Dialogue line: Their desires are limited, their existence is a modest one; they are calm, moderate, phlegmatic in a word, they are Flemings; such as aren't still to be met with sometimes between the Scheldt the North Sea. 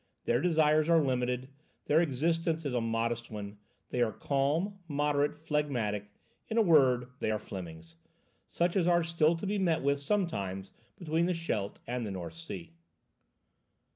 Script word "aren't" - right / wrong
wrong